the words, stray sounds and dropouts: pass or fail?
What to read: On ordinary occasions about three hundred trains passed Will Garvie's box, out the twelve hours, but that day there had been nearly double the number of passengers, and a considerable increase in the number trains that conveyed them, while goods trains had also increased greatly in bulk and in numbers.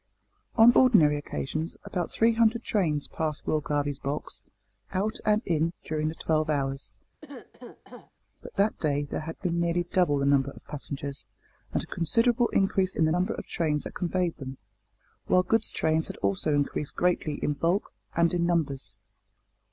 fail